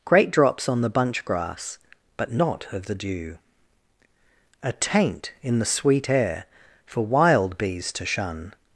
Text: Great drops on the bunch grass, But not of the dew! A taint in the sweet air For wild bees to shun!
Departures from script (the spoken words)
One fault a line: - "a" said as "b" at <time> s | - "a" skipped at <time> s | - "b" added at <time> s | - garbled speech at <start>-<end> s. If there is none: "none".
none